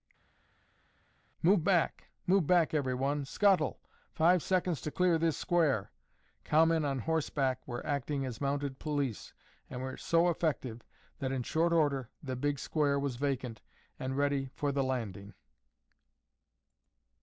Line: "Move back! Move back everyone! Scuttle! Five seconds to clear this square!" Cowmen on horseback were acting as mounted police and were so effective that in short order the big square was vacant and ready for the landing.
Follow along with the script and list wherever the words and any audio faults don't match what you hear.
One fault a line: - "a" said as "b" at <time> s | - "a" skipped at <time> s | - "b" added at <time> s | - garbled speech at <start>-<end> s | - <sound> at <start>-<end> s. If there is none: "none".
none